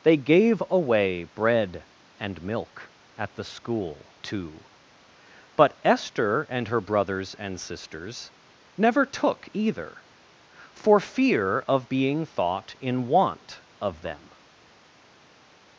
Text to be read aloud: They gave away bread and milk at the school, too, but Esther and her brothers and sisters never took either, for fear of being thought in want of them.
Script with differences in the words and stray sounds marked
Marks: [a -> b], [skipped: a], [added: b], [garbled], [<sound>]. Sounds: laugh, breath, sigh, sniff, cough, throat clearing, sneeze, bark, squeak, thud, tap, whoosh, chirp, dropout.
They gave away bread and milk at the school, too, but Esther and her brothers and sisters never took either, for fear of being thought in want of them.